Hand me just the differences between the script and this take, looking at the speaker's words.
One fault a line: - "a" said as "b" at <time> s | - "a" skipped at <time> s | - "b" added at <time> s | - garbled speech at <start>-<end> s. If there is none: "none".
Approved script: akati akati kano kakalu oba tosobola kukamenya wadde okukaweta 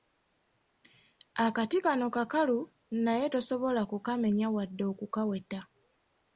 - "akati" skipped at 1.8 s
- "oba" said as "naye" at 3.0 s